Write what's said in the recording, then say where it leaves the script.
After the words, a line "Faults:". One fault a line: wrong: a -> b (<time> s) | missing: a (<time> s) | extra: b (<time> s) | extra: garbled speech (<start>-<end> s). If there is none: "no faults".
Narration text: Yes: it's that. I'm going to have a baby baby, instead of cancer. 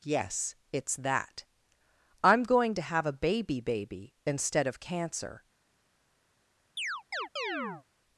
Yes: it's that. I'm going to have a baby baby, instead of cancer.
Faults:
no faults